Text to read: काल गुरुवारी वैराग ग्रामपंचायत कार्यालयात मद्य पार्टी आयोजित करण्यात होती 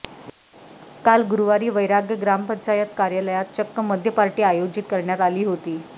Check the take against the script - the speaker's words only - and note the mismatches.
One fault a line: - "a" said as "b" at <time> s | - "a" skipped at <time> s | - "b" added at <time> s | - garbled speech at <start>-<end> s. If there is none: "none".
- "चक्क" added at 3.5 s
- "आली" added at 5.2 s